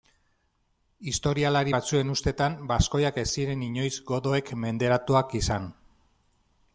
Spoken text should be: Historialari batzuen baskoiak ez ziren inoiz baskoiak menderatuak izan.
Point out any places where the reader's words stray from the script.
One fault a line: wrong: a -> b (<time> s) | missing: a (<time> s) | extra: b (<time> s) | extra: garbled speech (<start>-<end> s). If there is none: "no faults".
extra: ustetan (2.2 s)
wrong: baskoiak -> godoek (4.1 s)